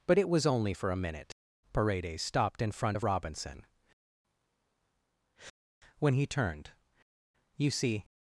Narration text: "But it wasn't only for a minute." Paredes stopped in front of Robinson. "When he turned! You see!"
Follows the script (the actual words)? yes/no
no